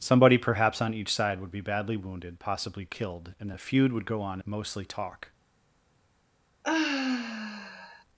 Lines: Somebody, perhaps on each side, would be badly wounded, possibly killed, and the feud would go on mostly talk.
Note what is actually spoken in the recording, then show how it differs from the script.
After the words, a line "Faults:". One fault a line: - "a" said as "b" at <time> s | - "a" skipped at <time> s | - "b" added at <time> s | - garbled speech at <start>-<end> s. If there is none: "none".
Somebody, perhaps on each side, would be badly wounded, possibly killed, and the feud would go on mostly talk.
Faults:
none